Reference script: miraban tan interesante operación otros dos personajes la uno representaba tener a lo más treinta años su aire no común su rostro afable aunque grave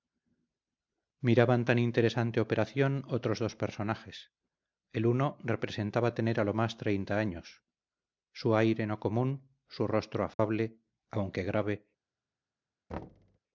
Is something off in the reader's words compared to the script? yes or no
yes